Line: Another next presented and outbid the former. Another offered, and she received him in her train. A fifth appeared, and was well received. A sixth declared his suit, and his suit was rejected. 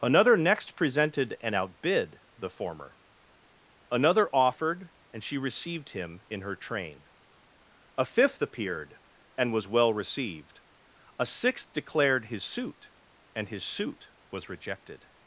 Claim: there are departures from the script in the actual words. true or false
false